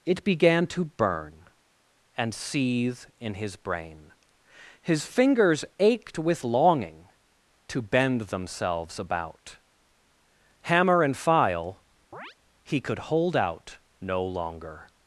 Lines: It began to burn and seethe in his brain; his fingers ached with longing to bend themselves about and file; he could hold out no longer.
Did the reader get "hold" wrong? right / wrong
right